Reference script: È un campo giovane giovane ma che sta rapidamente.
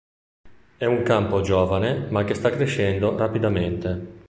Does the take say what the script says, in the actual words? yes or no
no